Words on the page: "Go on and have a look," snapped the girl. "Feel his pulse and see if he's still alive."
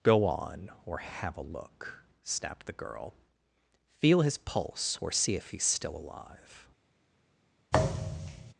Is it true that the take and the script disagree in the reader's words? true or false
true